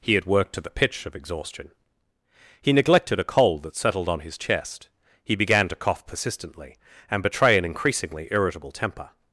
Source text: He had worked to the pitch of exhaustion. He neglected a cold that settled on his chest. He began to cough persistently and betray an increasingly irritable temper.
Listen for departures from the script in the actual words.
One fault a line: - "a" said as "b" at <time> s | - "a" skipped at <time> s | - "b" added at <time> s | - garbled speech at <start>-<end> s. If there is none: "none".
none